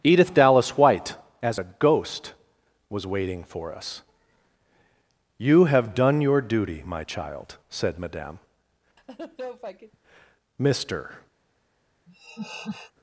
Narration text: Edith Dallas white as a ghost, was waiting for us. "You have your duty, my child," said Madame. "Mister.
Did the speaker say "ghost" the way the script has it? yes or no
yes